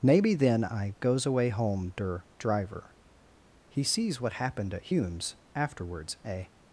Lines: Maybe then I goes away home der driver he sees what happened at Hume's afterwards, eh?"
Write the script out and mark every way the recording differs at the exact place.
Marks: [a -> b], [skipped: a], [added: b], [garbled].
Maybe then I goes away home der driver he sees what happened at Hume's afterwards, eh?"